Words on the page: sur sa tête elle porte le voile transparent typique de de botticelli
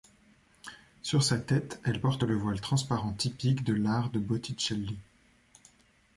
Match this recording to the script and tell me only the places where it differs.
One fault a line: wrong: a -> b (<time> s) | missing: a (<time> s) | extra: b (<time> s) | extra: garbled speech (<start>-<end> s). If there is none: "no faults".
extra: l'art (3.7 s)